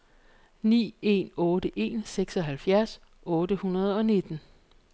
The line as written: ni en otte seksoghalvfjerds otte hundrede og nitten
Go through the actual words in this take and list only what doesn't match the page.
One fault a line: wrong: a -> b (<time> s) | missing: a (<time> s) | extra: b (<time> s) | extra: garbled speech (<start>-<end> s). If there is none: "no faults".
extra: en (1.8 s)